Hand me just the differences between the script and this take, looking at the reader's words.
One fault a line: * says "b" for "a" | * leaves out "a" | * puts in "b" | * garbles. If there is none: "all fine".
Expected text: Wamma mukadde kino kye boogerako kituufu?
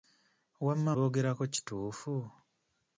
* leaves out "mukadde kino kye"